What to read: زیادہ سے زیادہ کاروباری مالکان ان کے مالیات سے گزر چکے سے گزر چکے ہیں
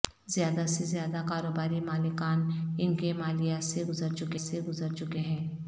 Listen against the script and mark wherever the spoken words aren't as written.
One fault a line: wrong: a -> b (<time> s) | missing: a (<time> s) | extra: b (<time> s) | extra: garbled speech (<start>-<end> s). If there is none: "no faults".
no faults